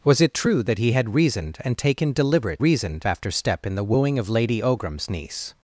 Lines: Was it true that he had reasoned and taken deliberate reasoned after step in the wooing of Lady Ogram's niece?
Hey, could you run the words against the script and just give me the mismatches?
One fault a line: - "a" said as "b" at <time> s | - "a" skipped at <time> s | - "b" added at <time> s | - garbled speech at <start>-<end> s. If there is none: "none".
none